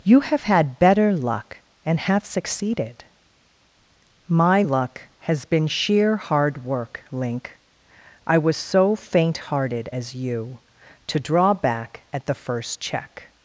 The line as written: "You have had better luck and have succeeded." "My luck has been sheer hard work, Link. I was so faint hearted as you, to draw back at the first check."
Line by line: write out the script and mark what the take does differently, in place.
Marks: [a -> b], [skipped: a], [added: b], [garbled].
"You have had better luck and have succeeded." "My luck has been sheer hard work, Link. I was so faint hearted as you, to draw back at the first check."